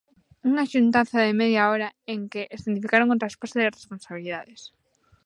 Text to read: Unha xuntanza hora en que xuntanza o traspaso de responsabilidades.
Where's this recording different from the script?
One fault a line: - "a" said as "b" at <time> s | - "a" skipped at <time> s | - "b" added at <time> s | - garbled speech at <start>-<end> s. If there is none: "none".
- "de media" added at 1.2 s
- "xuntanza" said as "escenificaron" at 2.5 s